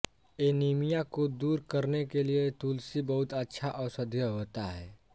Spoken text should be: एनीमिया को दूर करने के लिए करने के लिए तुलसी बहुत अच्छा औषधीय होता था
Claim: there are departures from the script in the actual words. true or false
true